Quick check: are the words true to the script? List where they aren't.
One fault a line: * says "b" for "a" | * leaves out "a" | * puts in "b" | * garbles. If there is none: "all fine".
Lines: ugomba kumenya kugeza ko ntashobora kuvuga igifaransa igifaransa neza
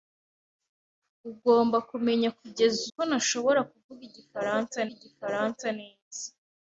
all fine